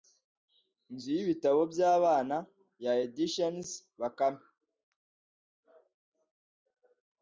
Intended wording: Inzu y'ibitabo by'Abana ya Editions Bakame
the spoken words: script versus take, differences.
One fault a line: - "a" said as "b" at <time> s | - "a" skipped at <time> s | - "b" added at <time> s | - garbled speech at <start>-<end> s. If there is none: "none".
none